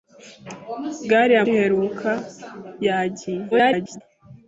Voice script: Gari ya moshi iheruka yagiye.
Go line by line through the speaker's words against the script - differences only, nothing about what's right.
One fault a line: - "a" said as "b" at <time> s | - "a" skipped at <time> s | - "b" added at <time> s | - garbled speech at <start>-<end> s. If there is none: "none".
- "moshi" skipped at 1.4 s
- garbled speech at 3.5-4.0 s